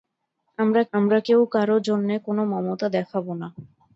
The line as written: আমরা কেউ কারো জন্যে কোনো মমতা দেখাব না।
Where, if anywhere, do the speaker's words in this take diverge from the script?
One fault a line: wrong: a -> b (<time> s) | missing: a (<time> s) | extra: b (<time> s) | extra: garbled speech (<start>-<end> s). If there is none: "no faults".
extra: আমরা (0.9 s)